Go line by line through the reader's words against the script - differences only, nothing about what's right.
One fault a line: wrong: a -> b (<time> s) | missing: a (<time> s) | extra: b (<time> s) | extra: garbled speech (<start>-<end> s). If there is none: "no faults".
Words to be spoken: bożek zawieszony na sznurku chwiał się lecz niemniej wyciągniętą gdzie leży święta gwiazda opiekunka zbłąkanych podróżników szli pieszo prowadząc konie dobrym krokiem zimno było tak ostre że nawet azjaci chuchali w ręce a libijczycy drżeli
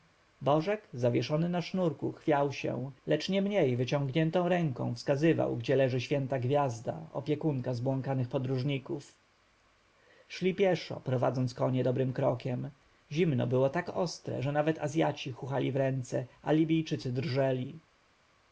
extra: ręką wskazywał (4.5 s)